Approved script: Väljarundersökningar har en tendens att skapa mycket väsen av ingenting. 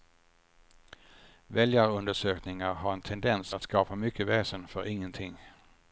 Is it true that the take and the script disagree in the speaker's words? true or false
true